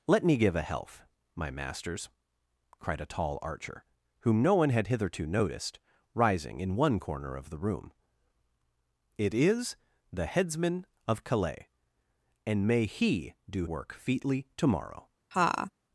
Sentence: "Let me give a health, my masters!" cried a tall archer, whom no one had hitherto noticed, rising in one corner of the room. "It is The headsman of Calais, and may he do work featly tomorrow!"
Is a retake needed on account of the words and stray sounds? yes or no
yes